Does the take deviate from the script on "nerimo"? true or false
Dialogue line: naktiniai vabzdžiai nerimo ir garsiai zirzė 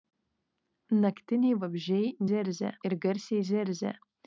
true